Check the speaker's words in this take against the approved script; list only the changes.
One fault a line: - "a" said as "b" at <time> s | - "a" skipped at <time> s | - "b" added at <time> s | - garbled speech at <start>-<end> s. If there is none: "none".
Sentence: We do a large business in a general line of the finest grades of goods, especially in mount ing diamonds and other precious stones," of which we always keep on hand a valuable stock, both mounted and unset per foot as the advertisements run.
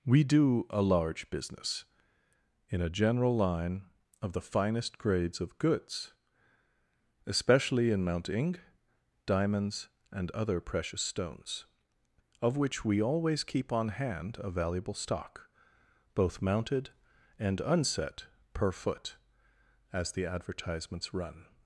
none